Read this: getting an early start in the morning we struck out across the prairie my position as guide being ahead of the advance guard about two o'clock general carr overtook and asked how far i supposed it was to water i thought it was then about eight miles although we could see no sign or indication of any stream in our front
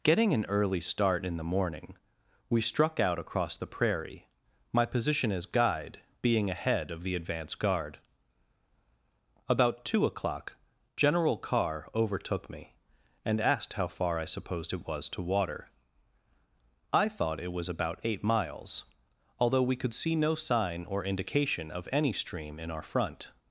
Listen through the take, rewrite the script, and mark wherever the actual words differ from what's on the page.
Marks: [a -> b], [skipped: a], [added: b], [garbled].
getting an early start in the morning we struck out across the prairie my position as guide being ahead of the advance guard about two o'clock general carr overtook [added: me] and asked how far i supposed it was to water i thought it was [skipped: then] about eight miles although we could see no sign or indication of any stream in our front